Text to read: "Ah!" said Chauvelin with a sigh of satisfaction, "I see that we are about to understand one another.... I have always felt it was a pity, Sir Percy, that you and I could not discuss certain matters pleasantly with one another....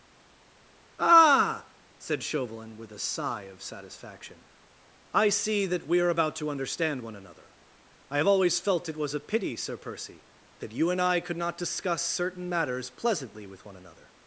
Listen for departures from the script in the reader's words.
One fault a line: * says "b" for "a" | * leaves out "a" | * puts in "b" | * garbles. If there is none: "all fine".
all fine